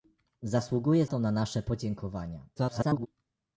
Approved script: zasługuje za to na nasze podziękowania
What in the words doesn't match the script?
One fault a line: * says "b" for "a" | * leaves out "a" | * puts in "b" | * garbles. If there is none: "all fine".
* leaves out "za"
* garbles